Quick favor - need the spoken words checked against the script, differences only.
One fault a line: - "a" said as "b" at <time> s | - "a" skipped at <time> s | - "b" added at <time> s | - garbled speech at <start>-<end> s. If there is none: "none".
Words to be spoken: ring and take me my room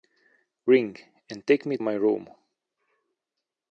none